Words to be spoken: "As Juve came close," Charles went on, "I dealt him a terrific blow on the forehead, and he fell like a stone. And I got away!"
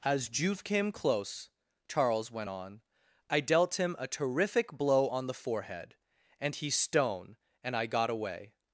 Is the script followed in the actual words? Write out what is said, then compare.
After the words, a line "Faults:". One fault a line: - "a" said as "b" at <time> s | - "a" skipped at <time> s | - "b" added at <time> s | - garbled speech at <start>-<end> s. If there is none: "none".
"As Juve came close," Charles went on, "I dealt him a terrific blow on the forehead, and he stone. And I got away!"
Faults:
- "fell like a" skipped at 6.7 s